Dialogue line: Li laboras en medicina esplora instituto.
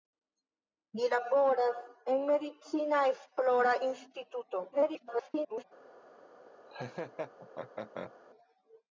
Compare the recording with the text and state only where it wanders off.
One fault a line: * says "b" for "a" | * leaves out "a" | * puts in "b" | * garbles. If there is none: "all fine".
* garbles